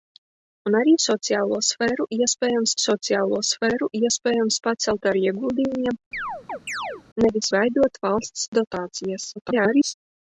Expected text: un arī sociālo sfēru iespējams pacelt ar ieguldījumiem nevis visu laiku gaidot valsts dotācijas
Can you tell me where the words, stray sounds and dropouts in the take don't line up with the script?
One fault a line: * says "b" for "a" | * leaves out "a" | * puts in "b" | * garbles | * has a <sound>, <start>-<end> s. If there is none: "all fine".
* puts in "sociālo sfēru iespējams"
* has a chirp, 6.1-7.0 s
* leaves out "visu laiku"
* garbles